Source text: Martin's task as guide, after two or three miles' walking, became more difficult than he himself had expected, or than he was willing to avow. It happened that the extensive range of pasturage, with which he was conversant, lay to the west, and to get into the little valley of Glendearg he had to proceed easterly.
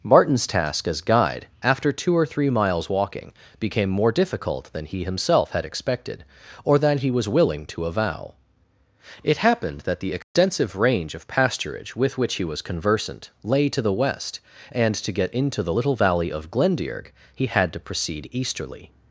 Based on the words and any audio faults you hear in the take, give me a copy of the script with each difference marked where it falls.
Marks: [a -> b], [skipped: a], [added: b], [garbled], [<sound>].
Martin's task as guide, after two or three miles' walking, became more difficult than he himself had expected, or than he was willing to avow. It happened that the extensive [dropout] range of pasturage, with which he was conversant, lay to the west, and to get into the little valley of Glendearg he had to proceed easterly.